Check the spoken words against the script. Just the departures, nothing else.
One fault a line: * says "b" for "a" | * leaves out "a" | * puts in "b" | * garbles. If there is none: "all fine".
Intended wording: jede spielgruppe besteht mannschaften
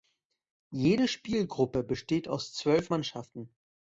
* puts in "aus zwölf"